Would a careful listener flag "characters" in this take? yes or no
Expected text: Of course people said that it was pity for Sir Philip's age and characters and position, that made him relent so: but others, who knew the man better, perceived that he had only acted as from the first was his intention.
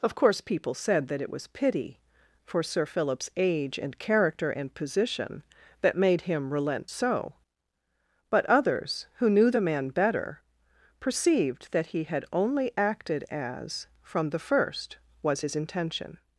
yes